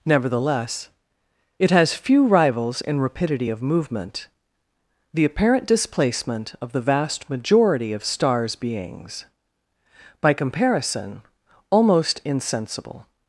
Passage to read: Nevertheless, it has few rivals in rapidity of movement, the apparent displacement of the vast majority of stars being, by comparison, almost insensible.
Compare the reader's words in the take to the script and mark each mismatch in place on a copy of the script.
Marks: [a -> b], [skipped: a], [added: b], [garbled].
Nevertheless, it has few rivals in rapidity of movement, the apparent displacement of the vast majority of stars [being, -> beings] by comparison, almost insensible.